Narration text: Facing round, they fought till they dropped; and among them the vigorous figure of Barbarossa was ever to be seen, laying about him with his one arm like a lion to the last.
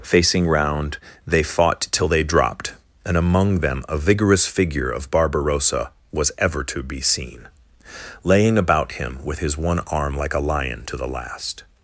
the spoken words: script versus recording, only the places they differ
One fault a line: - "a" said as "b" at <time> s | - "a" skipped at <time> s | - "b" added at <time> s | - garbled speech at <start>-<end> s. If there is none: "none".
- "the" said as "a" at 3.9 s